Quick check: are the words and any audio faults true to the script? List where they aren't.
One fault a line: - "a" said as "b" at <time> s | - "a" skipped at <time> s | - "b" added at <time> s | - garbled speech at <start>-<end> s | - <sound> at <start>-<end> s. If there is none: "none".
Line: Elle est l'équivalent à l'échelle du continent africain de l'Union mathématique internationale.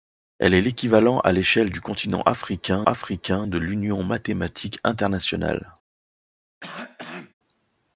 - "africain" added at 2.8 s
- cough at 6.6-7.3 s